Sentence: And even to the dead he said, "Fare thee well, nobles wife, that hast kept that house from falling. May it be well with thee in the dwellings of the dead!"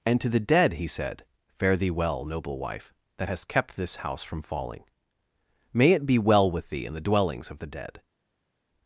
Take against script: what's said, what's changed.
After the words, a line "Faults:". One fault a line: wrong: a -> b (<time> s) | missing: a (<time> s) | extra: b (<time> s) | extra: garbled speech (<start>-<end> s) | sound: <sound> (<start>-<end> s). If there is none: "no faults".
And to the dead he said, "Fare thee well, noble wife, that hast kept this house from falling. May it be well with thee in the dwellings of the dead!"
Faults:
missing: even (0.2 s)
wrong: nobles -> noble (2.2 s)
wrong: that -> this (3.8 s)